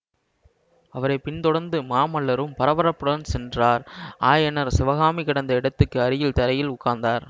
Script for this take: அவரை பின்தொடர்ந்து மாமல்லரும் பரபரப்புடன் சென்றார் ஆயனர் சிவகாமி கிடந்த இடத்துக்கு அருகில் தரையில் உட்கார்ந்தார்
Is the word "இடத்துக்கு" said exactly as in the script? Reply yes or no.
yes